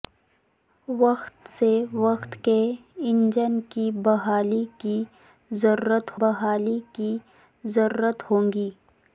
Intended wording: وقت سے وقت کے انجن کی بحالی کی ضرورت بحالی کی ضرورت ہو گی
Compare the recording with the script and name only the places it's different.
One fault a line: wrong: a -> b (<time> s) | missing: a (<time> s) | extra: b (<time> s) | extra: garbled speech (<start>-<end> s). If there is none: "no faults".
no faults